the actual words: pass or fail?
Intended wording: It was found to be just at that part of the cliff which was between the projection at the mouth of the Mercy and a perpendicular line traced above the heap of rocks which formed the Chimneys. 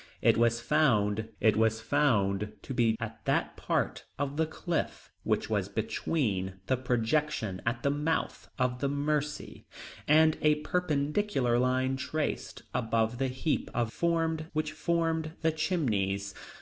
fail